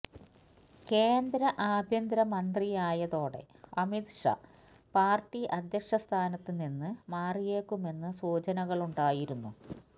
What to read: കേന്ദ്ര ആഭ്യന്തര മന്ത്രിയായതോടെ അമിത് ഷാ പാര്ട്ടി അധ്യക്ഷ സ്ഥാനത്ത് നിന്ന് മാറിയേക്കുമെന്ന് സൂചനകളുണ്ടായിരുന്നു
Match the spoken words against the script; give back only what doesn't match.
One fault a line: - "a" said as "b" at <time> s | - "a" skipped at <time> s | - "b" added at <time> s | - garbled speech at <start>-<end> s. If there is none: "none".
none